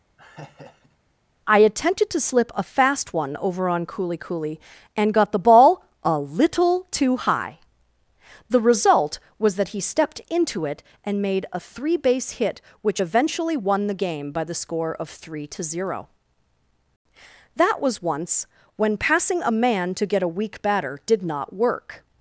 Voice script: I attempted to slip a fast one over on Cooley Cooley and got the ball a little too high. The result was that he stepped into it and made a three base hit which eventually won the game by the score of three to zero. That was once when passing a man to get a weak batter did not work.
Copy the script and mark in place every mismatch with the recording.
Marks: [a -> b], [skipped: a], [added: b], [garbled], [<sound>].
[laugh] I attempted to slip a fast one over on Cooley Cooley and got the ball a little too high. The result was that he stepped into it and made a three base hit which eventually won the game by the score of three to zero. That was once when passing a man to get a weak batter did not work.